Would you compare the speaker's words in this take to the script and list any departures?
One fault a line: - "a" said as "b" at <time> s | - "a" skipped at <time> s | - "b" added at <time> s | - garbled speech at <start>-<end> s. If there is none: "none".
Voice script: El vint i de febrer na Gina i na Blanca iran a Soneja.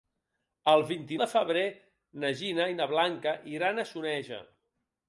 none